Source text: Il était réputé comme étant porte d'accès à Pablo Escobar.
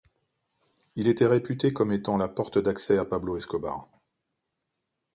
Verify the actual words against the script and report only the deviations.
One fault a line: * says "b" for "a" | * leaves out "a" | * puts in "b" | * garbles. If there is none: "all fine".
* puts in "la"